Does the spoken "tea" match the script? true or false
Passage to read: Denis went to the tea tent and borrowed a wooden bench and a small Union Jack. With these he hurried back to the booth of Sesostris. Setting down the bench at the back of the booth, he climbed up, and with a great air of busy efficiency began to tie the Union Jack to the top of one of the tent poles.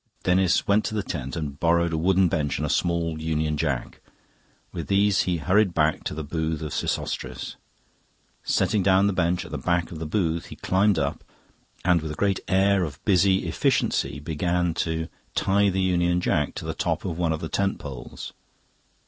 false